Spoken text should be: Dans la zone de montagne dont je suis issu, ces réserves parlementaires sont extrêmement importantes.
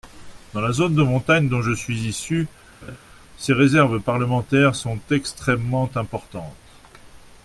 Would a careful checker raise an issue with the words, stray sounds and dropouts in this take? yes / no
yes